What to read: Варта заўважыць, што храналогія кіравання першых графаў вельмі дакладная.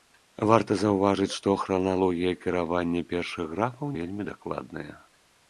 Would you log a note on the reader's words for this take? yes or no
no